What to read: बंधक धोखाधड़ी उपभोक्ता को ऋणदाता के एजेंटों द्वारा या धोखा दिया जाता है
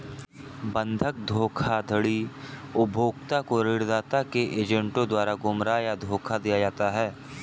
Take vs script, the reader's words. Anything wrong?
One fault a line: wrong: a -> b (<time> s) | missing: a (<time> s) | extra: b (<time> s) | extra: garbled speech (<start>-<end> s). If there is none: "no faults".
extra: गुमराह (5.4 s)